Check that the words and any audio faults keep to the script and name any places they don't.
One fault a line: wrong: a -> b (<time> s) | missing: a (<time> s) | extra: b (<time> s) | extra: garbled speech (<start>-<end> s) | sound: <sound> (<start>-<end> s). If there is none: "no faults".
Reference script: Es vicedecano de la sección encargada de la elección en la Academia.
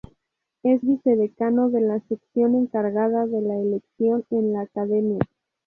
no faults